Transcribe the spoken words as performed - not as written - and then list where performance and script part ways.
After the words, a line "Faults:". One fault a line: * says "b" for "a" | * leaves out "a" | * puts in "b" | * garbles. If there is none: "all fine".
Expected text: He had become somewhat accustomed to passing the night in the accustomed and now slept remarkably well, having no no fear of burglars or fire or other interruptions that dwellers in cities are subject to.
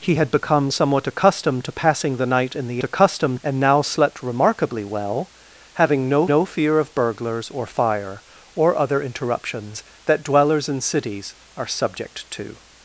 He had become somewhat accustomed to passing the night in the accustomed and now slept remarkably well, having no no fear of burglars or fire or other interruptions that dwellers in cities are subject to.
Faults:
all fine